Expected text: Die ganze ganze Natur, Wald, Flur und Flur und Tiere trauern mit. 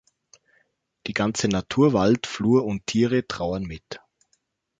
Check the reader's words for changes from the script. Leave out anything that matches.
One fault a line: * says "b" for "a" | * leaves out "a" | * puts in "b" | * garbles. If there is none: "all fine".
* leaves out "ganze"
* leaves out "Flur und"